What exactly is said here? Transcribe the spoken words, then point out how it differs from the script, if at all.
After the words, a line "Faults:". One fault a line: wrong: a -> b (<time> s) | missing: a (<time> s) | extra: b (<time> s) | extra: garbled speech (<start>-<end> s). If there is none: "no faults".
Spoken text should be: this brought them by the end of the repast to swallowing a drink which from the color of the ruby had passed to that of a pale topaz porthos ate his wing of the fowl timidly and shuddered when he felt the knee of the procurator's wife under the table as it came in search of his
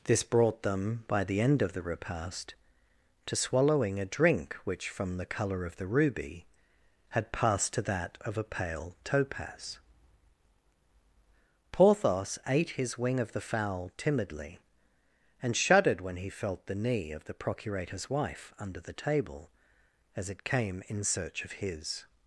this brought them by the end of the repast to swallowing a drink which from the color of the ruby had passed to that of a pale topaz porthos ate his wing of the fowl timidly and shuddered when he felt the knee of the procurator's wife under the table as it came in search of his
Faults:
no faults